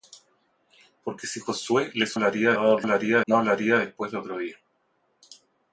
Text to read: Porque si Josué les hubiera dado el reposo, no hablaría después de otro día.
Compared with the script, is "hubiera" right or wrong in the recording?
wrong